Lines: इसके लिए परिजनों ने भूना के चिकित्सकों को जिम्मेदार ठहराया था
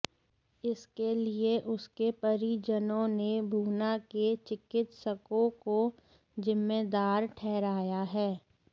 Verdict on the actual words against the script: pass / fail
fail